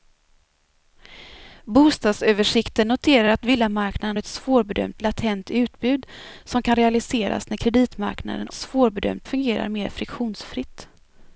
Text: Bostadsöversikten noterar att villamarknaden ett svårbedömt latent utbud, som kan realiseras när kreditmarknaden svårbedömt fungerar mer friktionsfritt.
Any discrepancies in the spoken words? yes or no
no